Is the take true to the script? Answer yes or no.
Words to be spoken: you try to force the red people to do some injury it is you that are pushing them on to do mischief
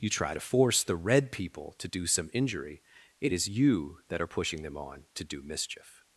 yes